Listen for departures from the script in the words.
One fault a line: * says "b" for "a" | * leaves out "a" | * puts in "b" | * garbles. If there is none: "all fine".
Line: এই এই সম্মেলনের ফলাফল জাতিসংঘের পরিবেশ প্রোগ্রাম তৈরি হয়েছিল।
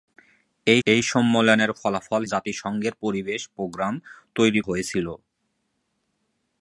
all fine